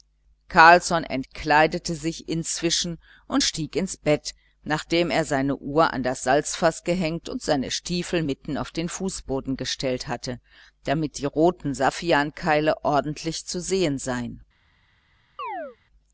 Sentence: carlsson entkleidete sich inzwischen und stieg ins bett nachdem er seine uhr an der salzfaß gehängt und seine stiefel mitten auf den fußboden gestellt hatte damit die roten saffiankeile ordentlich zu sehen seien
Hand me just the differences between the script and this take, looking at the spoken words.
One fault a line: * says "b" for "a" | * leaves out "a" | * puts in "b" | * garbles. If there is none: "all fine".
* says "das" for "der"